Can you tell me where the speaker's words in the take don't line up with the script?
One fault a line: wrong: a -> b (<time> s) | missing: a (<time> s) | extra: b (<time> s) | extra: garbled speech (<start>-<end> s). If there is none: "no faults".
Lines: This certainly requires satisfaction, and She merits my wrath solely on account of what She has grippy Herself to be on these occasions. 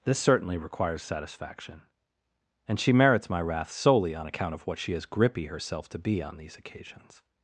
no faults